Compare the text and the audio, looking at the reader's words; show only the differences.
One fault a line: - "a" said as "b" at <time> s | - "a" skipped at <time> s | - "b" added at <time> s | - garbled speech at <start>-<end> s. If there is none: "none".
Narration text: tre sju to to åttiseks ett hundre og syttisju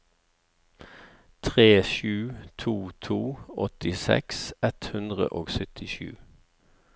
none